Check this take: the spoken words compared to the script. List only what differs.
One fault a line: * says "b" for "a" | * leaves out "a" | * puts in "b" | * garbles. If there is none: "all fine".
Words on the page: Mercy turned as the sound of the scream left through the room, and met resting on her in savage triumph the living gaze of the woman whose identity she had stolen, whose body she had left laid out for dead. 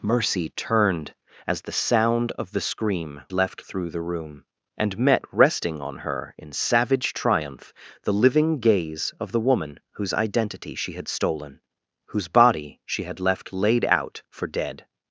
all fine